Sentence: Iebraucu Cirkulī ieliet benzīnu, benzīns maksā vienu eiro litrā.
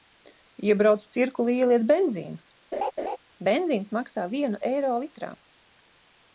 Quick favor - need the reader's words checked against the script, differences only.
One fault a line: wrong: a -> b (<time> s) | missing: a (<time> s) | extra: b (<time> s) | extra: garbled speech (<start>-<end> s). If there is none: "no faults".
no faults